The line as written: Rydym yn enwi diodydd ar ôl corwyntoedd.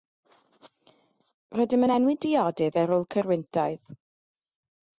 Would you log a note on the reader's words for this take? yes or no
no